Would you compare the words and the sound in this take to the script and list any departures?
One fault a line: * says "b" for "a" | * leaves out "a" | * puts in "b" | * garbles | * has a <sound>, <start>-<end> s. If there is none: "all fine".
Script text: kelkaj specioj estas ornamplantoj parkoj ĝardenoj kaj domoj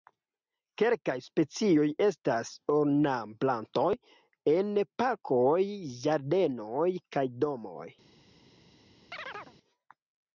* puts in "en"
* has a chirp, 9.1-9.5 s